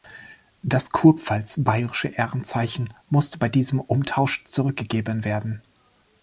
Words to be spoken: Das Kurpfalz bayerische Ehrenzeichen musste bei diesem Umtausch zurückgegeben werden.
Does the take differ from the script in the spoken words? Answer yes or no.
no